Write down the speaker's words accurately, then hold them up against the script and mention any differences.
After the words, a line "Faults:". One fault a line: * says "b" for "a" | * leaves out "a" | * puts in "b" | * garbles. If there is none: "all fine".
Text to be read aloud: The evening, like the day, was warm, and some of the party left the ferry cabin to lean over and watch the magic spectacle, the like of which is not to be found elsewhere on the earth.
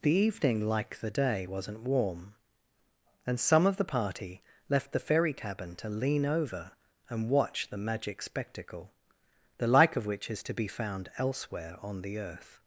The evening, like the day, wasn't warm, and some of the party left the ferry cabin to lean over and watch the magic spectacle, the like of which is to be found elsewhere on the earth.
Faults:
* says "wasn't" for "was"
* leaves out "not"